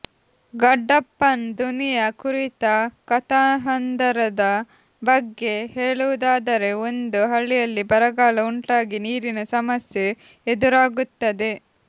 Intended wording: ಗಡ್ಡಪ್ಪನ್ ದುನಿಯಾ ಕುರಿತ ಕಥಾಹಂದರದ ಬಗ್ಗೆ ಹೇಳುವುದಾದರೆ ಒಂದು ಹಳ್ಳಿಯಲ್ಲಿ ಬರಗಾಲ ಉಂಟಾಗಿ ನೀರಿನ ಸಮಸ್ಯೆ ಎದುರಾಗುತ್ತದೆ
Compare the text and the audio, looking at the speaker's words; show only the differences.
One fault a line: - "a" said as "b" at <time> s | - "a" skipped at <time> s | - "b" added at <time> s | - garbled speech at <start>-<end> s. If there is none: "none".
none